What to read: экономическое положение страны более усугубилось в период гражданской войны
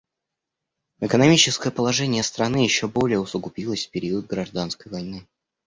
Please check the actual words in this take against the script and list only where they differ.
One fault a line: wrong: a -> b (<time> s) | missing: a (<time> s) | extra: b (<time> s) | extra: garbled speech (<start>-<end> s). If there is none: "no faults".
extra: еще (2.6 s)